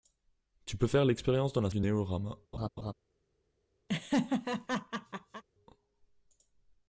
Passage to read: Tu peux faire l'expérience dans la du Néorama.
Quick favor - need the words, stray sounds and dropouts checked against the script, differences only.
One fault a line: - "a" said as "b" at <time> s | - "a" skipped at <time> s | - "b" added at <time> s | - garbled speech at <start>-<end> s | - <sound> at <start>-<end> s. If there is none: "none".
- laugh at 2.5-2.9 s
- laugh at 3.9-5.4 s